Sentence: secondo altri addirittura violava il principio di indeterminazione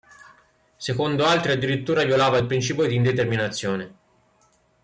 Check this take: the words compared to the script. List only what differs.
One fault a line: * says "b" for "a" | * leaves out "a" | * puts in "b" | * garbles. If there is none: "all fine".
all fine